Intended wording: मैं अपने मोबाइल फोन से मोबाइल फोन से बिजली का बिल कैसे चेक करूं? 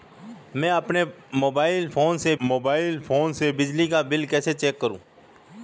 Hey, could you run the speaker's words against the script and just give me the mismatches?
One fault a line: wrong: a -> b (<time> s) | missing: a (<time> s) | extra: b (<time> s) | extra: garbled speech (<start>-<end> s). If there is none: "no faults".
no faults